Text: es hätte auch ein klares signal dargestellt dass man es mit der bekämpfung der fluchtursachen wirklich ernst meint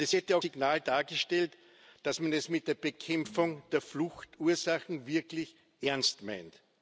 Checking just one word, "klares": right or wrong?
wrong